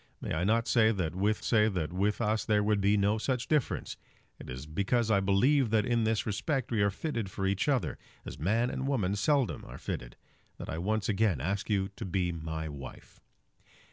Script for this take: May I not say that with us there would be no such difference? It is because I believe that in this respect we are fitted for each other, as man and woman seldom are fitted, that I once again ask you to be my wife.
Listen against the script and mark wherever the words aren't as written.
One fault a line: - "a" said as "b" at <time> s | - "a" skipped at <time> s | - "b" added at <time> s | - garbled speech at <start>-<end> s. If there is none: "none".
- "say that with" added at 1.4 s